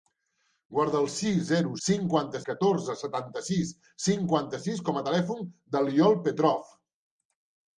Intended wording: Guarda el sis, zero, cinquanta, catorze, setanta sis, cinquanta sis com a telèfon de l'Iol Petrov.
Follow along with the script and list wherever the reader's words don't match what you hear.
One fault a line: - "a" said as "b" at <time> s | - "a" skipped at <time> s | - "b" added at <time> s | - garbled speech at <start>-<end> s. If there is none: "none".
none